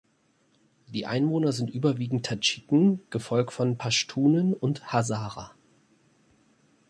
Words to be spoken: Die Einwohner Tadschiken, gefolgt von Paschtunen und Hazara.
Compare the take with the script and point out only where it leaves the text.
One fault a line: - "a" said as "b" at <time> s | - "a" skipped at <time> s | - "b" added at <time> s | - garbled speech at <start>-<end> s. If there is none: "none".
- "sind überwiegend" added at 1.5 s